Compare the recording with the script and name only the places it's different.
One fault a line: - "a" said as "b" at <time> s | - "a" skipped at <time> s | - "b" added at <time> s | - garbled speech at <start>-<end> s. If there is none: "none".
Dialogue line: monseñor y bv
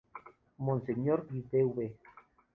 none